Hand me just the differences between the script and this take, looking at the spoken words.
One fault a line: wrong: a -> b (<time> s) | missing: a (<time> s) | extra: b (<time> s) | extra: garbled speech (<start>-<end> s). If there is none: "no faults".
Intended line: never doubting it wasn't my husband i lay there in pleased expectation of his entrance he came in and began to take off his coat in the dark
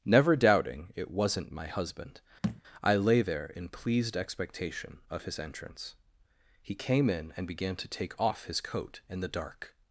no faults